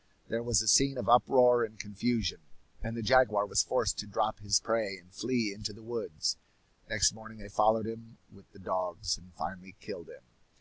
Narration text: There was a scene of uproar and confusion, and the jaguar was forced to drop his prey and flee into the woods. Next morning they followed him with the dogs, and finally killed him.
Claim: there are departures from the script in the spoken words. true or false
false